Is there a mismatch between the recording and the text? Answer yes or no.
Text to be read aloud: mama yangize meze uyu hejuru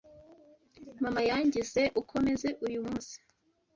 yes